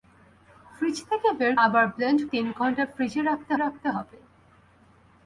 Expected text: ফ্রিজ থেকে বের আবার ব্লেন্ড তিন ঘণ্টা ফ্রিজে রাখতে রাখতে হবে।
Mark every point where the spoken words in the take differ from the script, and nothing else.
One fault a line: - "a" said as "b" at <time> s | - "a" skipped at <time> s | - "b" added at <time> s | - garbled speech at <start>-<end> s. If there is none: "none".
none